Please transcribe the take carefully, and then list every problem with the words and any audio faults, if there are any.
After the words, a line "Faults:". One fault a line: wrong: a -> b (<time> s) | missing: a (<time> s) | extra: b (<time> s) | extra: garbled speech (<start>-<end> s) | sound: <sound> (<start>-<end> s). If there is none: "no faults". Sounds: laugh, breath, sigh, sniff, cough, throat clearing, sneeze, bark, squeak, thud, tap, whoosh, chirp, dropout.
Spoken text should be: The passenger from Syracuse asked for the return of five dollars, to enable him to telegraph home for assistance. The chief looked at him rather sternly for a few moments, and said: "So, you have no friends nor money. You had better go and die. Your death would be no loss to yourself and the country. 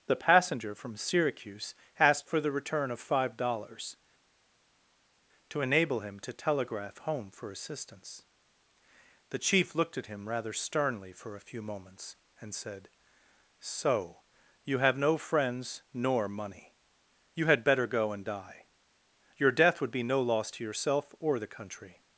The passenger from Syracuse asked for the return of five dollars, to enable him to telegraph home for assistance. The chief looked at him rather sternly for a few moments, and said: "So, you have no friends nor money. You had better go and die. Your death would be no loss to yourself or the country.
Faults:
wrong: and -> or (21.2 s)